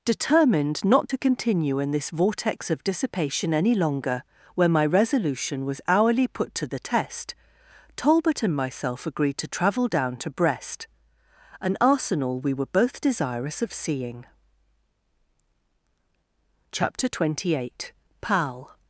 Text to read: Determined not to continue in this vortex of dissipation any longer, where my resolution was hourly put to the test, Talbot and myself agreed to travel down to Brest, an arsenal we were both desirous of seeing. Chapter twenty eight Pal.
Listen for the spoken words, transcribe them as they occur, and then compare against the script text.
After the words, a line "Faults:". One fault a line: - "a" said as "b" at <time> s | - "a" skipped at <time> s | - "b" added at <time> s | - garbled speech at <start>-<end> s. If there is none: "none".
Determined not to continue in this vortex of dissipation any longer, where my resolution was hourly put to the test, Talbot and myself agreed to travel down to Brest, an arsenal we were both desirous of seeing. Chapter twenty eight Pal.
Faults:
none